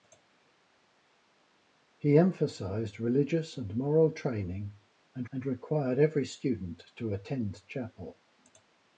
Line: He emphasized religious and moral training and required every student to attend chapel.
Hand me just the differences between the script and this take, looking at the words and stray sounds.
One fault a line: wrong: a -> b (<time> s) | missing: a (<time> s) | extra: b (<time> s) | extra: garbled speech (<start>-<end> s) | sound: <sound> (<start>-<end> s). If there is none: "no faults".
extra: and (5.3 s)